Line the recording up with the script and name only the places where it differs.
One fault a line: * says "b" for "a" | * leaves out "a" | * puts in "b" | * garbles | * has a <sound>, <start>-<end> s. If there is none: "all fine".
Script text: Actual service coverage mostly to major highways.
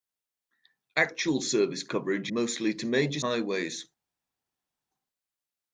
all fine